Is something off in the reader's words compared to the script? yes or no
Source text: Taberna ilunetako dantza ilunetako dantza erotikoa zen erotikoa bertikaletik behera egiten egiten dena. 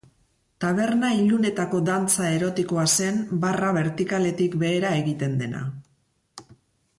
yes